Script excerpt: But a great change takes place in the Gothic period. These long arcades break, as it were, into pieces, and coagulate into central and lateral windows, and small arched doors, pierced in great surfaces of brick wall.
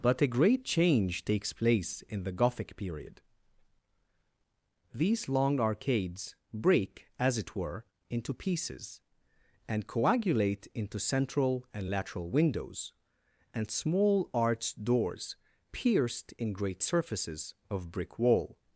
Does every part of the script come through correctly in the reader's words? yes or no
yes